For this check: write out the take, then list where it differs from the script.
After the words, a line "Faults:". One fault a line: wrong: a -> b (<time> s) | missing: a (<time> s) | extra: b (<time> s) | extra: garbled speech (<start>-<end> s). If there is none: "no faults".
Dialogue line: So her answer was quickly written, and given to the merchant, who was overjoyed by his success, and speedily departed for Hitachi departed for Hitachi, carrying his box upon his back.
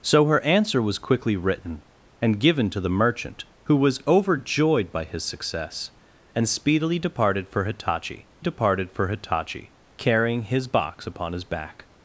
So her answer was quickly written, and given to the merchant, who was overjoyed by his success, and speedily departed for Hitachi departed for Hitachi, carrying his box upon his back.
Faults:
no faults